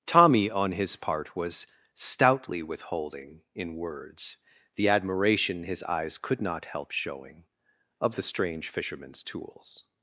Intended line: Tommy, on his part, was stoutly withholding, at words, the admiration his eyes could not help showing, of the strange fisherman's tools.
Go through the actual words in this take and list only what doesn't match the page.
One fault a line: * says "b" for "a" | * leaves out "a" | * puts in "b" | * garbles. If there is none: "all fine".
* says "in" for "at"